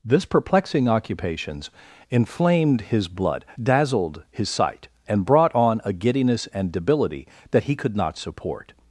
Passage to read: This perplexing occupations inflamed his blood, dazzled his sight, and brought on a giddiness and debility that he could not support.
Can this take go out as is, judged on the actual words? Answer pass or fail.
pass